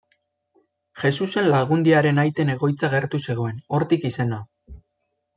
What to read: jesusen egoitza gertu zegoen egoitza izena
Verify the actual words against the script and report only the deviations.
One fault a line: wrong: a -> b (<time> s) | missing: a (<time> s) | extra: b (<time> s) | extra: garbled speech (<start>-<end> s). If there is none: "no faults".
extra: lagundiaren aiten (1.6 s)
wrong: egoitza -> hortik (3.8 s)